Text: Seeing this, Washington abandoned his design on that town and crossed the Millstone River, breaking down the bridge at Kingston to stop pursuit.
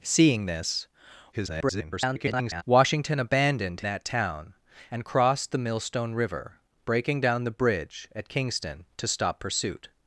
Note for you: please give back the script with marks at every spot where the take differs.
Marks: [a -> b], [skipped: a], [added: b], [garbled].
Seeing this, [garbled] Washington abandoned [skipped: his design on] that town and crossed the Millstone River, breaking down the bridge at Kingston to stop pursuit.